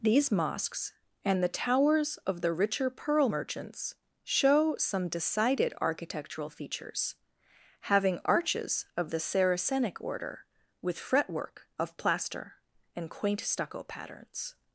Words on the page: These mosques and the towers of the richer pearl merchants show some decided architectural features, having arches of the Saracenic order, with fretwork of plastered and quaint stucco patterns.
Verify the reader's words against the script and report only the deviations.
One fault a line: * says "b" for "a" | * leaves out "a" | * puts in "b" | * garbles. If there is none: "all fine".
* says "plaster" for "plastered"